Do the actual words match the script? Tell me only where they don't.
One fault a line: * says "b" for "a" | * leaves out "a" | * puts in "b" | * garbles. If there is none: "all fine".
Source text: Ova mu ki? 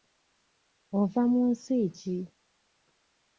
* puts in "nsi"